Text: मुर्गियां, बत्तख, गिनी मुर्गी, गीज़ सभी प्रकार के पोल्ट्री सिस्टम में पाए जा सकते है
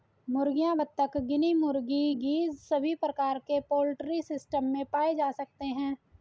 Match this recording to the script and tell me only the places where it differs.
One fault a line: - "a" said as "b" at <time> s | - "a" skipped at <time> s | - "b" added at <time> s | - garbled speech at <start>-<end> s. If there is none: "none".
none